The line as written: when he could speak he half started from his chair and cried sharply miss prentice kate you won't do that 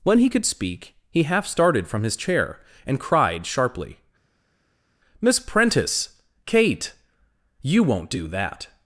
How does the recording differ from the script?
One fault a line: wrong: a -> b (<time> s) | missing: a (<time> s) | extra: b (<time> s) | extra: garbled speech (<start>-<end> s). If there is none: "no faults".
no faults